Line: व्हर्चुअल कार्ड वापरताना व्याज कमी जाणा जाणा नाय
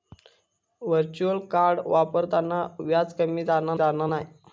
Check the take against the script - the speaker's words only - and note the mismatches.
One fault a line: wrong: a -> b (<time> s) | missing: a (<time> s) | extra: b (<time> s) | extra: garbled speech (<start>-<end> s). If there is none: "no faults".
no faults